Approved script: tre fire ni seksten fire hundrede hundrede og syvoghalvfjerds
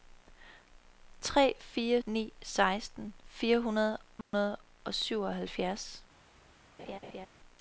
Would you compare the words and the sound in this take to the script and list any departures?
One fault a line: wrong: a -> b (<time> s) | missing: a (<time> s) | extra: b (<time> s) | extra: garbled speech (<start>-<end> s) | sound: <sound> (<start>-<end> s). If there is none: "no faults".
sound: dropout (4.2-4.3 s)
sound: laugh (6.8-7.3 s)